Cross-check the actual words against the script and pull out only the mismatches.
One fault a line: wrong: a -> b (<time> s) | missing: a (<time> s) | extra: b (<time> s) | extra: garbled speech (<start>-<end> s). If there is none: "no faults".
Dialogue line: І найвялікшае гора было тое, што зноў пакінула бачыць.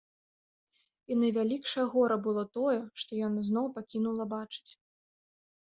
extra: яна (3.3 s)